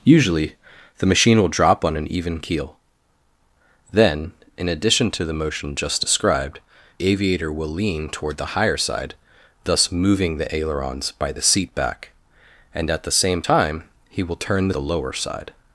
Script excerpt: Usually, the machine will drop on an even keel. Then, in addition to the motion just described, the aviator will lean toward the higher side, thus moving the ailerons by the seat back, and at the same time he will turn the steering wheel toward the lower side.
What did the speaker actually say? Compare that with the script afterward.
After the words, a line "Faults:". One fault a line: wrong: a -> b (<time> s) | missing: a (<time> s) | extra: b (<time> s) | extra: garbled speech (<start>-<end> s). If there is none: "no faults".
Usually, the machine will drop on an even keel. Then, in addition to the motion just described, aviator will lean toward the higher side, thus moving the ailerons by the seat back, and at the same time he will turn the the lower side.
Faults:
missing: the (6.6 s)
missing: steering wheel toward (14.7 s)